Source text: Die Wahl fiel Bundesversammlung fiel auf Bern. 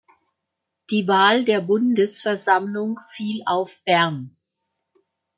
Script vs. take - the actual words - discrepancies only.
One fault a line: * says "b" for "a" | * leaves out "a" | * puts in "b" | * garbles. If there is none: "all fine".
* says "der" for "fiel"